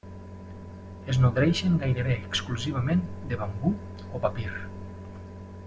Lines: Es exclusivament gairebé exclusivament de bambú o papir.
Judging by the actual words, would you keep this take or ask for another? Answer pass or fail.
fail